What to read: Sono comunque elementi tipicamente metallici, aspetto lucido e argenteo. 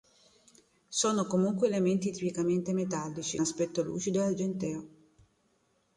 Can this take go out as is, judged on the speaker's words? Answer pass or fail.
pass